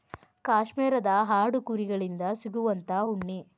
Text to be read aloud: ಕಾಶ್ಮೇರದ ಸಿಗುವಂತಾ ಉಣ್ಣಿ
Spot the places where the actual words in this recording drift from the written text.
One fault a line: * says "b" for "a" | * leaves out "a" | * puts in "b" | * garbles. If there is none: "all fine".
* puts in "ಆಡು ಕುರಿ ಗಳಿಂದ"